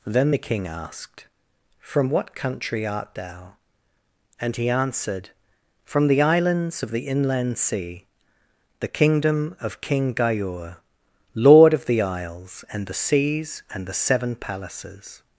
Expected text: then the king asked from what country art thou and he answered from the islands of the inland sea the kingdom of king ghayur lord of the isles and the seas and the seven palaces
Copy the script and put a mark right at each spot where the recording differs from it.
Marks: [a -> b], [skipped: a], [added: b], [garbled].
then the king asked from what country art thou and he answered from the islands of the inland sea the kingdom of king ghayur lord of the isles and the seas and the seven palaces